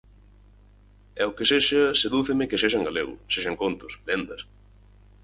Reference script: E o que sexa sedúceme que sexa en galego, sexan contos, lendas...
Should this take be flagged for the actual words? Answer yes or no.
no